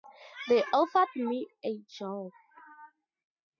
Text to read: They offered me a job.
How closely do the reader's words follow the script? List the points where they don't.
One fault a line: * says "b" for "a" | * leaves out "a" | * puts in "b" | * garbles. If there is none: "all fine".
all fine